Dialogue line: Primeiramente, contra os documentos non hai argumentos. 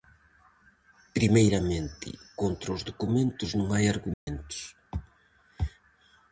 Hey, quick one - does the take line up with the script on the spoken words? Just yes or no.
yes